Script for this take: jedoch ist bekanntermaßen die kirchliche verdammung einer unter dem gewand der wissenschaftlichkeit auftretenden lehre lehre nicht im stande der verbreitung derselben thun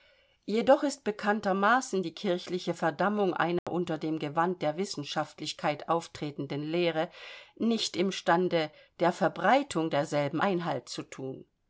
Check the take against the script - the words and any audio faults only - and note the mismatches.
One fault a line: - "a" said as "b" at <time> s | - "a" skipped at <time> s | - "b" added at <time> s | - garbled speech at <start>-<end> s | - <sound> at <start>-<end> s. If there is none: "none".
- dropout at 3.6-3.7 s
- "lehre" skipped at 7.1 s
- "einhalt zu" added at 10.4 s